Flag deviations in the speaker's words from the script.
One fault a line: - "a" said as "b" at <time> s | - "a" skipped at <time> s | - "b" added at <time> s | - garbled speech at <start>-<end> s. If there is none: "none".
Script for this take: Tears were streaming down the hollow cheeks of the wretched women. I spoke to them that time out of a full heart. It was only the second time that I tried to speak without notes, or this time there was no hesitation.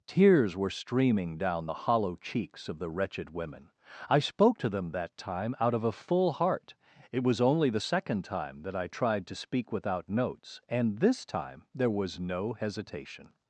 - "or" said as "and" at 10.7 s